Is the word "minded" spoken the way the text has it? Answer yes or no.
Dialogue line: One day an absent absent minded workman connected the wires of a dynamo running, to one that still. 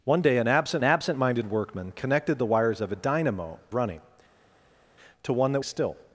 yes